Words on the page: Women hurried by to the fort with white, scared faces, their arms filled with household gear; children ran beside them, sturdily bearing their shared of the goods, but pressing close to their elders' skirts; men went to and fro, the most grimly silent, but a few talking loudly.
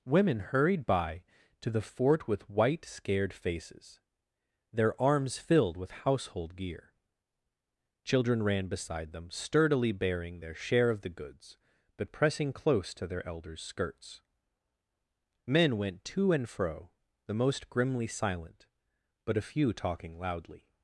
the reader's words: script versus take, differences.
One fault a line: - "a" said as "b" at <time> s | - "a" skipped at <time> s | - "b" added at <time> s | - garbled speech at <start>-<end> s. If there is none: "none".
- "shared" said as "share" at 10.5 s